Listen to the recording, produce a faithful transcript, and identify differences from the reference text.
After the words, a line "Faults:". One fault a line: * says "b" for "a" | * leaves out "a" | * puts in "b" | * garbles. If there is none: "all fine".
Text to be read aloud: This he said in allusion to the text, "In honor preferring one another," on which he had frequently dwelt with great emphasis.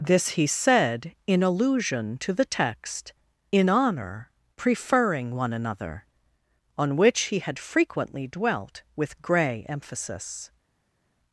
This he said in allusion to the text, "In honor preferring one another," on which he had frequently dwelt with grey emphasis.
Faults:
* says "grey" for "great"